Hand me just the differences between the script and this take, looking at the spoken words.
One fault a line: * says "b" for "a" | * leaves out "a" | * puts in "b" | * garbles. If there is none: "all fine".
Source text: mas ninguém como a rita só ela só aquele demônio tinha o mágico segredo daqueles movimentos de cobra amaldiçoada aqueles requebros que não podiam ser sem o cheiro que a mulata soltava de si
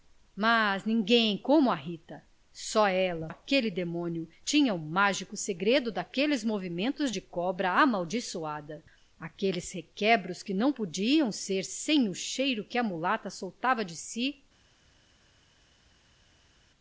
* leaves out "só"